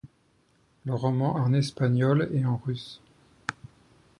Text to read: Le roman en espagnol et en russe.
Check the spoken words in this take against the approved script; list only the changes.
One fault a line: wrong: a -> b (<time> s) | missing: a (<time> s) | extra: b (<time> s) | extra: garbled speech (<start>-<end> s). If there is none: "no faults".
no faults